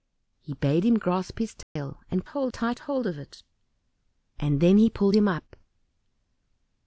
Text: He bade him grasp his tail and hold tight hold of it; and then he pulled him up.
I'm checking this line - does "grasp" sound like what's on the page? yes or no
yes